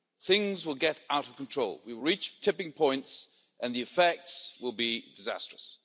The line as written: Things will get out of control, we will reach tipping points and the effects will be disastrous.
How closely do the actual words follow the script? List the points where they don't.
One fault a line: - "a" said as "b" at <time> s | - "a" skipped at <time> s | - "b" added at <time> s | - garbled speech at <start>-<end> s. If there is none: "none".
none